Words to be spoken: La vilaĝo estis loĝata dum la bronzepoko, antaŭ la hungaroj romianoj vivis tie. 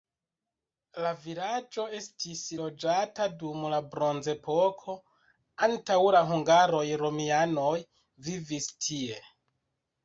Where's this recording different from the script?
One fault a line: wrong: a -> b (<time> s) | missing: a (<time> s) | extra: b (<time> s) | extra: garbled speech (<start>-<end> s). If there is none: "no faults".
no faults